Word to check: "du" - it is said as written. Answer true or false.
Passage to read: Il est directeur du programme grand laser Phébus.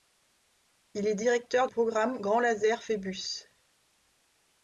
false